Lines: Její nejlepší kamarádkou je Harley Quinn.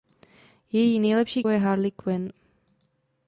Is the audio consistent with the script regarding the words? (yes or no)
no